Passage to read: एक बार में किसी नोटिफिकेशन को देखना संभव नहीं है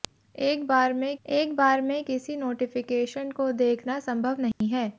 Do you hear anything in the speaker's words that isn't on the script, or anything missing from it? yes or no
yes